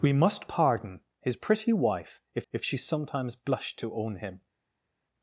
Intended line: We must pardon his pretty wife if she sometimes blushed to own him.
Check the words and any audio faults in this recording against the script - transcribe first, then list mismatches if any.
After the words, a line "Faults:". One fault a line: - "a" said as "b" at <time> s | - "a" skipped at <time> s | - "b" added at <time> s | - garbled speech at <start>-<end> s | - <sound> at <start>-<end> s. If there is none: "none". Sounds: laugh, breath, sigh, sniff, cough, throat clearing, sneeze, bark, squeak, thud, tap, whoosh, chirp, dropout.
We must pardon his pretty wife if if she sometimes blushed to own him.
Faults:
- "if" added at 2.5 s